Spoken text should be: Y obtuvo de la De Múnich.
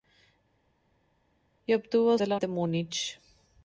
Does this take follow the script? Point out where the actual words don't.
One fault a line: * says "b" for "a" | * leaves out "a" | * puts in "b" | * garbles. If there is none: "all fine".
all fine